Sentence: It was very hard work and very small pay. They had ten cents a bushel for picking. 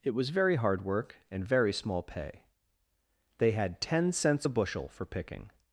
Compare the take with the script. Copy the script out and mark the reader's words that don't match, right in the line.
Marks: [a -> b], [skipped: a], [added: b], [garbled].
It was very hard work and very small pay. They had ten cents a bushel for picking.